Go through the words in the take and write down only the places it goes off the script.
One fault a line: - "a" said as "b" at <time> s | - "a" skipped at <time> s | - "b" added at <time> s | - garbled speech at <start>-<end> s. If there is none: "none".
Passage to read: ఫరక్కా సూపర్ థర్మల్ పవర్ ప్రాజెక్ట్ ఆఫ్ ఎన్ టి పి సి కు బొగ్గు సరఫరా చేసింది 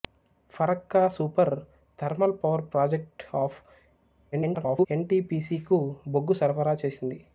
- garbled speech at 4.3-4.9 s